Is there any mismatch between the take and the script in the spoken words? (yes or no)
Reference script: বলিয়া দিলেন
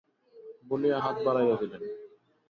yes